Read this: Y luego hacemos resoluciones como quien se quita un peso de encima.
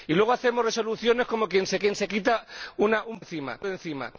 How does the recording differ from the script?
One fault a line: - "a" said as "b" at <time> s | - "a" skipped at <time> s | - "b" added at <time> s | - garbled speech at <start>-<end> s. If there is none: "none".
- "quien se" added at 1.8 s
- "peso" said as "encima" at 3.2 s